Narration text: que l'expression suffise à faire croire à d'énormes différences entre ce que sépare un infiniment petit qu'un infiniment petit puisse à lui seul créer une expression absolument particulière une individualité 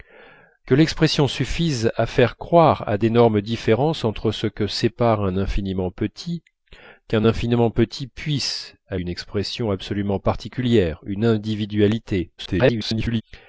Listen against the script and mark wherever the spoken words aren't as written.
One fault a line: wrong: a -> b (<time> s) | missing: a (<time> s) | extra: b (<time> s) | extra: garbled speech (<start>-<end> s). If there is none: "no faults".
missing: lui seul créer (9.0 s)
extra: garbled speech (12.4-13.2 s)